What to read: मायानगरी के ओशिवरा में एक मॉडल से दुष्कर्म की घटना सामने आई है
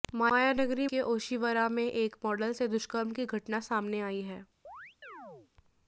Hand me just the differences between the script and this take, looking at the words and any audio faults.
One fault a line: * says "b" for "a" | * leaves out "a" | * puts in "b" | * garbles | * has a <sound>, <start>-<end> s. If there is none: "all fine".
* has a chirp, 4.6-5.5 s